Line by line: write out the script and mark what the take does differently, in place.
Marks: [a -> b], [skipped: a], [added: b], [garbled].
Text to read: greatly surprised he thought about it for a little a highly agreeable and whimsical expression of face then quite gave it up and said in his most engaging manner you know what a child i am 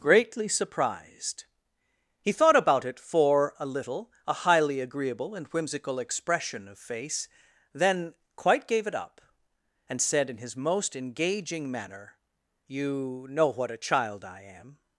greatly surprised he thought about it for a little a highly agreeable and whimsical expression of face then quite gave it up and said in his most engaging manner you know what a child i am